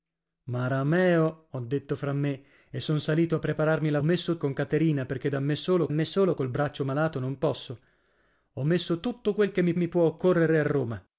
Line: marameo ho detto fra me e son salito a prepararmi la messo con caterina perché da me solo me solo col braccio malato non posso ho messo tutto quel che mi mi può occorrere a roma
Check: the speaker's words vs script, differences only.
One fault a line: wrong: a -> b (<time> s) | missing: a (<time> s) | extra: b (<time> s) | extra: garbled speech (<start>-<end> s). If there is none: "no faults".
no faults